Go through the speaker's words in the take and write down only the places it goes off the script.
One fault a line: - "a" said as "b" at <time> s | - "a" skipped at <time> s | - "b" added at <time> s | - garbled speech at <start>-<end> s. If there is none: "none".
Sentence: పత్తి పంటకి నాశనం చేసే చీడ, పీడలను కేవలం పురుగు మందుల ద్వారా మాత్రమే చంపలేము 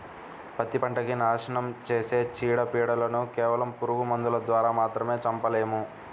none